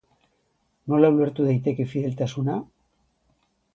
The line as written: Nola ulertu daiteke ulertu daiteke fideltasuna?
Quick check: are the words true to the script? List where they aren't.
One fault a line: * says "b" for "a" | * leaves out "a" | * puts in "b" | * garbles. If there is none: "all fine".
* leaves out "ulertu daiteke"